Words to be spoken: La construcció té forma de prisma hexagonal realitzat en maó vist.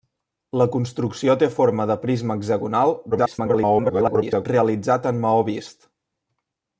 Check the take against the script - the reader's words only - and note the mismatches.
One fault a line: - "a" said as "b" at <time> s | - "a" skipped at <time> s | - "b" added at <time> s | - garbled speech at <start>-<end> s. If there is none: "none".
- garbled speech at 3.1-4.5 s